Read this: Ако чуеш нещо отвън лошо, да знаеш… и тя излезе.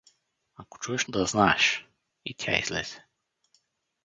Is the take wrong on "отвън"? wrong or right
wrong